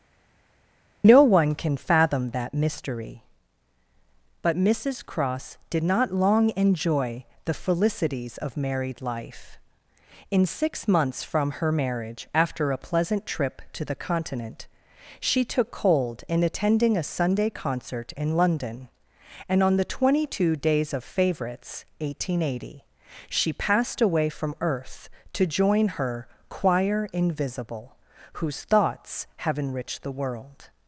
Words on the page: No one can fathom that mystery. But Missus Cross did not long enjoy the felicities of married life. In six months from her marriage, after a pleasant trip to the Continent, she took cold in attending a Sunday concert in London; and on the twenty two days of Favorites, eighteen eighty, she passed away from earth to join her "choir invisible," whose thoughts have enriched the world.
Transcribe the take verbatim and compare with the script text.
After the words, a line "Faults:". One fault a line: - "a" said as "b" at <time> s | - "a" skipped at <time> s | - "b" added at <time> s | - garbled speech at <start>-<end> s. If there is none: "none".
No one can fathom that mystery. But Missus Cross did not long enjoy the felicities of married life. In six months from her marriage, after a pleasant trip to the Continent, she took cold in attending a Sunday concert in London; and on the twenty two days of Favorites, eighteen eighty, she passed away from earth to join her "choir invisible," whose thoughts have enriched the world.
Faults:
none